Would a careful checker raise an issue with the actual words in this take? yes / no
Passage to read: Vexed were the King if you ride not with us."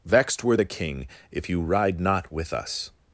no